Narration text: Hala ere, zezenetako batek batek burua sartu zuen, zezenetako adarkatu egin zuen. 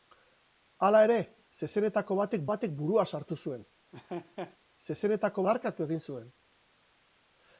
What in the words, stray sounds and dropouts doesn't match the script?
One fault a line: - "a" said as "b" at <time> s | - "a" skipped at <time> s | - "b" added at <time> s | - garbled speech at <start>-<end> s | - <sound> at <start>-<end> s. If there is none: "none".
- laugh at 3.9-4.6 s